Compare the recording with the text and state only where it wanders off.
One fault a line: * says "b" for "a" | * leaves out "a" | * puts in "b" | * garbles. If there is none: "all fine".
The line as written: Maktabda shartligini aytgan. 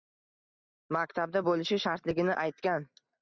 * puts in "bo‘lishi"